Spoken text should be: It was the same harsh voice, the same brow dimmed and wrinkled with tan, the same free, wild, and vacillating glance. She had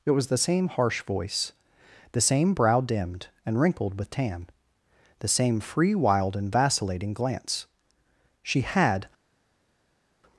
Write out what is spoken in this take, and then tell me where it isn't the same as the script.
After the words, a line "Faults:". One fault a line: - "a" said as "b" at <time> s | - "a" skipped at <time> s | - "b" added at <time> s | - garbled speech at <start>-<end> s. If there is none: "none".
It was the same harsh voice, the same brow dimmed and wrinkled with tan, the same free, wild, and vacillating glance. She had
Faults:
none